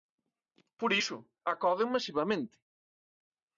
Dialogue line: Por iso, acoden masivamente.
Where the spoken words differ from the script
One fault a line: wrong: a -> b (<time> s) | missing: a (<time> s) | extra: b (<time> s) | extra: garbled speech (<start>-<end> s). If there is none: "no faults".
no faults